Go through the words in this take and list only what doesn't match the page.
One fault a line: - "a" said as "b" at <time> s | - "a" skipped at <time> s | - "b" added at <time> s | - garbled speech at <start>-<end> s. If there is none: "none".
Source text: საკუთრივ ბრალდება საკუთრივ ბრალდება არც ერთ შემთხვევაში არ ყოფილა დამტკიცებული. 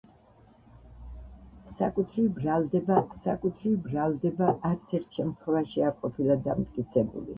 none